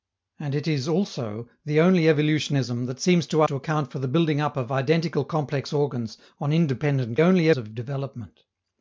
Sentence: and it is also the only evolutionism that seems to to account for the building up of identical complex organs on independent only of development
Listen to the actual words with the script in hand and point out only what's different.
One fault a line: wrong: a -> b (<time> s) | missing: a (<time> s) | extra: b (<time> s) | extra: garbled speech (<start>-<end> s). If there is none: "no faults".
no faults